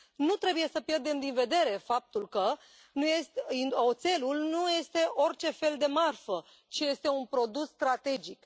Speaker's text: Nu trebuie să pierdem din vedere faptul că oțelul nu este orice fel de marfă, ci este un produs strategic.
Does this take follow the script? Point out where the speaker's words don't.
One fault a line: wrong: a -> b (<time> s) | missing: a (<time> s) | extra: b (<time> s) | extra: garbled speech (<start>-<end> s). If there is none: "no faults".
no faults